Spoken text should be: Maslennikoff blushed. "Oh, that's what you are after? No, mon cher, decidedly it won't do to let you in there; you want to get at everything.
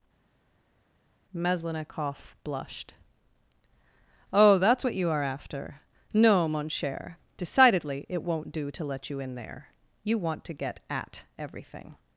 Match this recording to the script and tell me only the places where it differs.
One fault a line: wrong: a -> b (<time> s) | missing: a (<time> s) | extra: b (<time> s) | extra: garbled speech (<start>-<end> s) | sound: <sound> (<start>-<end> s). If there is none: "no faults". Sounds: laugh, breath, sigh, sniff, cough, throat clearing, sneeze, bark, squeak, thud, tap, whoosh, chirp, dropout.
no faults